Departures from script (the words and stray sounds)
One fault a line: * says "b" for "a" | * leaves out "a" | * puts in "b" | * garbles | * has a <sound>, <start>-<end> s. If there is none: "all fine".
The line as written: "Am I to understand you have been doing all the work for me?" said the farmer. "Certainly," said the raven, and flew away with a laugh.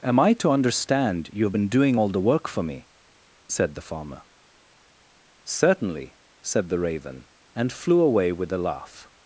all fine